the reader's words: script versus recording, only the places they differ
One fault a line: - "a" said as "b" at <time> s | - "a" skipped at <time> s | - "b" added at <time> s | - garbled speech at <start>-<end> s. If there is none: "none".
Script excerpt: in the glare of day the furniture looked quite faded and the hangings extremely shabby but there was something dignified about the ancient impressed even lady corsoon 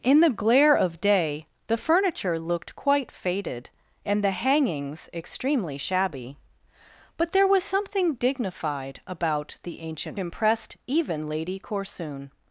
none